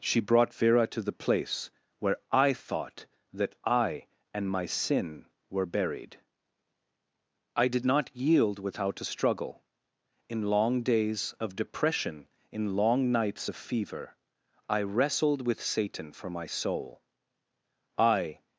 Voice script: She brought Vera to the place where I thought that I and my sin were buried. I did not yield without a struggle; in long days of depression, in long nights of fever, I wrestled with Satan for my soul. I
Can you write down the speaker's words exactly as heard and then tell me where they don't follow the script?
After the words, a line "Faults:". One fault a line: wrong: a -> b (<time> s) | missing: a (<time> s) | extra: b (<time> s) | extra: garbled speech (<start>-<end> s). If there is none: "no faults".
She brought Vera to the place where I thought that I and my sin were buried. I did not yield without a struggle; in long days of depression, in long nights of fever, I wrestled with Satan for my soul. I
Faults:
no faults